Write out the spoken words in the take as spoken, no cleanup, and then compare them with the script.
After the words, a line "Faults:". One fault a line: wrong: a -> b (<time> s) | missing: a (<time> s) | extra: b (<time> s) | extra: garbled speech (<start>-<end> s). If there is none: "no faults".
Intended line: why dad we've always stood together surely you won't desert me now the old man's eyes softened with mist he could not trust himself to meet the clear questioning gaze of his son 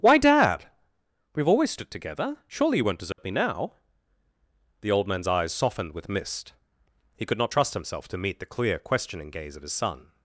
why dad we've always stood together surely you won't desert me now the old man's eyes softened with mist he could not trust himself to meet the clear questioning gaze of his son
Faults:
no faults